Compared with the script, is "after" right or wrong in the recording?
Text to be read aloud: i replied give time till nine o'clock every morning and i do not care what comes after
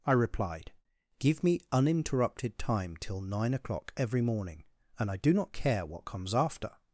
right